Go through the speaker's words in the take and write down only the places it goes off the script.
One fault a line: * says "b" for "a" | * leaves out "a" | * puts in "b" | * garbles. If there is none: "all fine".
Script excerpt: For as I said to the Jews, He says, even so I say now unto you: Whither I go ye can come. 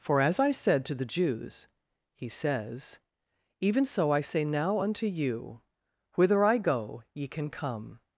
all fine